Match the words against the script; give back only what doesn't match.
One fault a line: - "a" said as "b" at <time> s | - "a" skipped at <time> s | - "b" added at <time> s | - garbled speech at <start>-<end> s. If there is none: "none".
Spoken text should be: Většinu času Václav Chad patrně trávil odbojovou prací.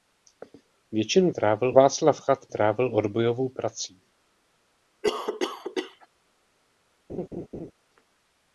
- "času" said as "trávil" at 1.3 s
- "patrně" skipped at 2.5 s